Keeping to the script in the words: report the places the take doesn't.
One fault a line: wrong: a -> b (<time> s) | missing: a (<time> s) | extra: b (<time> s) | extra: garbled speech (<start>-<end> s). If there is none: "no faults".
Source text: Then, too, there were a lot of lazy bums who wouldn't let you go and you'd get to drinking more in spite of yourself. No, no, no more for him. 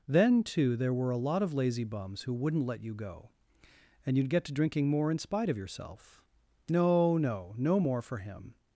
no faults